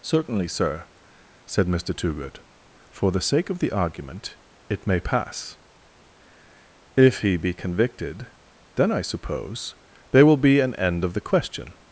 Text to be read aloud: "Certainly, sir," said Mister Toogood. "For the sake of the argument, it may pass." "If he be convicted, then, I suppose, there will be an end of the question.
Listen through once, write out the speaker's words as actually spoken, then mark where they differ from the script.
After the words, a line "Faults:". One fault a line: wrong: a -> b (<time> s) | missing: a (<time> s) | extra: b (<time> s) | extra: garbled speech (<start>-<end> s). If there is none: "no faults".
"Certainly, sir," said Mister Toogood. "For the sake of the argument, it may pass." "If he be convicted, then, I suppose, there will be an end of the question.
Faults:
no faults